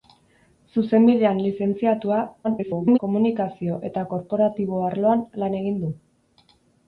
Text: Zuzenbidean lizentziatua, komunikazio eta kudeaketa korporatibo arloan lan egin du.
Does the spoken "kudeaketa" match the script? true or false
false